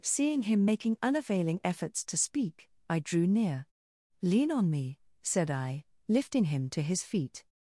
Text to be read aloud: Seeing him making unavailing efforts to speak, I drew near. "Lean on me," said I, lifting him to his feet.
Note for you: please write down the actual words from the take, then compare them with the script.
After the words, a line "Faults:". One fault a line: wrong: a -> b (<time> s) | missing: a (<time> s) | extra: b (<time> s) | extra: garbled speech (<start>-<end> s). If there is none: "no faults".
Seeing him making unavailing efforts to speak, I drew near. "Lean on me," said I, lifting him to his feet.
Faults:
no faults